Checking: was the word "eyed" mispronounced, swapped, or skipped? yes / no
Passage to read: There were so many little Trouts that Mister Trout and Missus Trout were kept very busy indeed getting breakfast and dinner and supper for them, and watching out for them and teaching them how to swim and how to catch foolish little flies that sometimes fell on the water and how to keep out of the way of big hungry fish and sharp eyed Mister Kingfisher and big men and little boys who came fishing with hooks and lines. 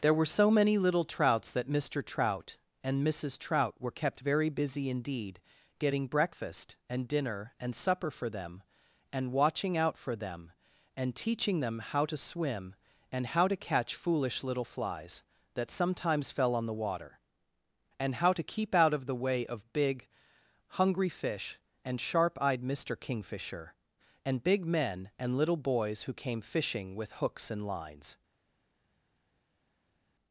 no